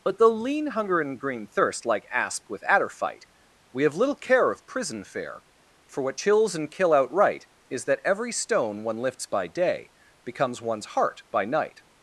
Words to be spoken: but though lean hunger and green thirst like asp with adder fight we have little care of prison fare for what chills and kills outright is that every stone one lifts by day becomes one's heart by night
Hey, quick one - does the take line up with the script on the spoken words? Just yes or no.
no